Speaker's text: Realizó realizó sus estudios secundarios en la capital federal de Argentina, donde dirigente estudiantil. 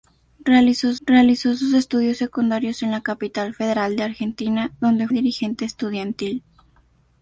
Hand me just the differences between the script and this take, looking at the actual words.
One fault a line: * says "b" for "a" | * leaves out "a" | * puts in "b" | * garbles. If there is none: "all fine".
all fine